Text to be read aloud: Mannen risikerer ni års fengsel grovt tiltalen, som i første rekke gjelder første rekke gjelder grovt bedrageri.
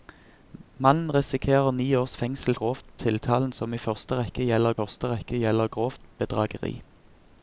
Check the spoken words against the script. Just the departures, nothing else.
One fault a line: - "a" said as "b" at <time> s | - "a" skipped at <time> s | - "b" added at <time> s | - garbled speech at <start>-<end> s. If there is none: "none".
none